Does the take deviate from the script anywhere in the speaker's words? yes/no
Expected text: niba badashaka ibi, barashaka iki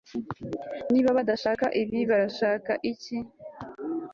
no